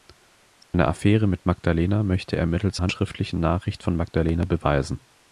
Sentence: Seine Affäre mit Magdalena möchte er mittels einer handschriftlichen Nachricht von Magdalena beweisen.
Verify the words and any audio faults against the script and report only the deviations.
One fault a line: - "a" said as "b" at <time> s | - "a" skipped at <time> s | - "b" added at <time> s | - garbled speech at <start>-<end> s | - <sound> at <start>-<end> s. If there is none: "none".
- dropout at 0.6-0.7 s
- "einer" skipped at 2.8 s